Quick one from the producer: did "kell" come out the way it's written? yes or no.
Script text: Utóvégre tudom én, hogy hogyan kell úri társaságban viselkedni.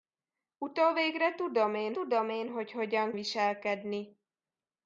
no